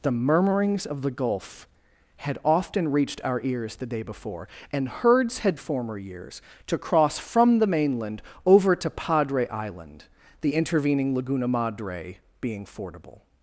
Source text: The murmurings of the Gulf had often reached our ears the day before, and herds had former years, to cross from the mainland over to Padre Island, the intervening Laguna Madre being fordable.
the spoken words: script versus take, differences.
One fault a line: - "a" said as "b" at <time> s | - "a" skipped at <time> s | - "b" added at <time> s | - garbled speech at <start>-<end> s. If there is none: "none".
none